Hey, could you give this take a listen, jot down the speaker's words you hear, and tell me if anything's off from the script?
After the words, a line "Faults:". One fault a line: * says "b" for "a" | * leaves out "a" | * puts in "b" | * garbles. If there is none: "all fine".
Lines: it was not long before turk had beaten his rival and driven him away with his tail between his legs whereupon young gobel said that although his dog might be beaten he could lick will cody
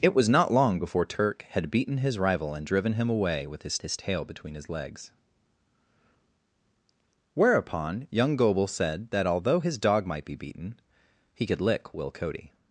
it was not long before turk had beaten his rival and driven him away with his his tail between his legs whereupon young gobel said that although his dog might be beaten he could lick will cody
Faults:
* puts in "his"